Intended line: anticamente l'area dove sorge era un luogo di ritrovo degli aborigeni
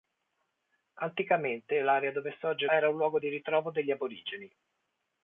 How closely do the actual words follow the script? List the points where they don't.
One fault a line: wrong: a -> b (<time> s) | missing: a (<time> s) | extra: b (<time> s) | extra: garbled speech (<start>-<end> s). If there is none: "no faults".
no faults